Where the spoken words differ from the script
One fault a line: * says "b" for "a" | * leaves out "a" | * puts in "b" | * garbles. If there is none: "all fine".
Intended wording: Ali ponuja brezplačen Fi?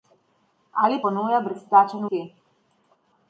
all fine